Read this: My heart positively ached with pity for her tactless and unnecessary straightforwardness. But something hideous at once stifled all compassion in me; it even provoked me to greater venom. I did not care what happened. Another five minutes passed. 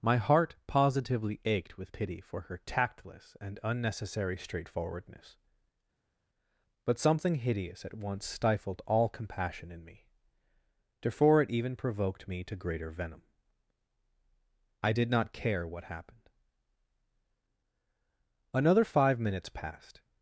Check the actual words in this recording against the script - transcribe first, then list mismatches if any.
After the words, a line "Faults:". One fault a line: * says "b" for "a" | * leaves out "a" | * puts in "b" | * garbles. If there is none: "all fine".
My heart positively ached with pity for her tactless and unnecessary straightforwardness. But something hideous at once stifled all compassion in me; therefore it even provoked me to greater venom. I did not care what happened. Another five minutes passed.
Faults:
* puts in "therefore"